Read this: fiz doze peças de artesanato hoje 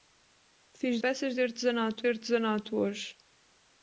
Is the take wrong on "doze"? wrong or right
wrong